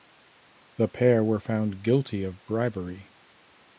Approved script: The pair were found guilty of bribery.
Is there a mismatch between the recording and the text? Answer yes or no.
no